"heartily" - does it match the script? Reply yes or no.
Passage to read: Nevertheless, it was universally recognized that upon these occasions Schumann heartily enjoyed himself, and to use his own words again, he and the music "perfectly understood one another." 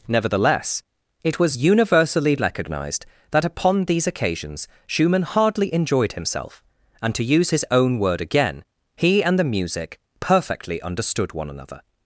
no